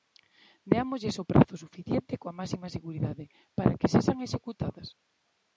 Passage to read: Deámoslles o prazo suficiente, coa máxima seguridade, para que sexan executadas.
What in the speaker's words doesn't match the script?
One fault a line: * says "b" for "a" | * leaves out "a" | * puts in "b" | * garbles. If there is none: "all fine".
all fine